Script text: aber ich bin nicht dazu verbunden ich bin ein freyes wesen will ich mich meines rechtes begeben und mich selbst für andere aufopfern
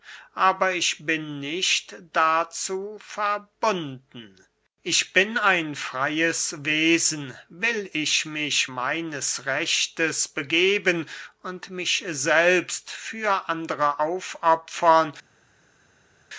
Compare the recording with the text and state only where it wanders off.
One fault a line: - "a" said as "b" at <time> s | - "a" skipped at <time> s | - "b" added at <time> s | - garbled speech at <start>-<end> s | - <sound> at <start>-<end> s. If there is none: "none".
none